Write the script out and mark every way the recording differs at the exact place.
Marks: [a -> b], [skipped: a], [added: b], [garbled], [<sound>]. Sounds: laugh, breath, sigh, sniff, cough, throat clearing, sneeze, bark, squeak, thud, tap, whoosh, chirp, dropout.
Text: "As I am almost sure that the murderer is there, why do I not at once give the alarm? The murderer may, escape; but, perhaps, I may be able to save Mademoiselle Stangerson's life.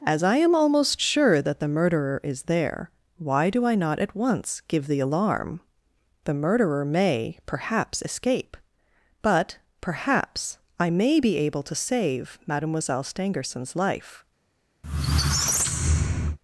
"As I am almost sure that the murderer is there, why do I not at once give the alarm? The murderer may, [added: perhaps] escape; but, perhaps, I may be able to save Mademoiselle Stangerson's life. [squeak]